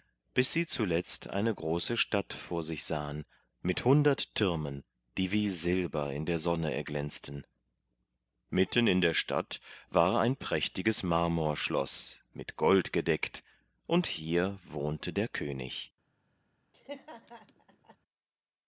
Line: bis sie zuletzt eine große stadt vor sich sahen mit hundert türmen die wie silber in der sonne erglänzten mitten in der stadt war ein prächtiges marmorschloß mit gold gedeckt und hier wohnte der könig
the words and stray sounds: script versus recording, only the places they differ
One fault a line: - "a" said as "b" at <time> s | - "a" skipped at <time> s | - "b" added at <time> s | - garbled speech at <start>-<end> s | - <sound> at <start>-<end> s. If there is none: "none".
- laugh at 16.7-18.0 s